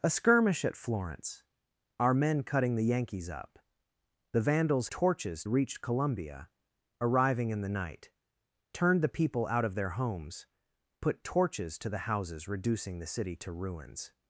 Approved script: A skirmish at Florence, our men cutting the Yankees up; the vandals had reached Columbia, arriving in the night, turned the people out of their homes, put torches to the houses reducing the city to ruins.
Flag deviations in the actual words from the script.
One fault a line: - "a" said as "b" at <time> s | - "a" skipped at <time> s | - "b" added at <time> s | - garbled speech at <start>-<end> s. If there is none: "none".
- "had" said as "torches" at 4.9 s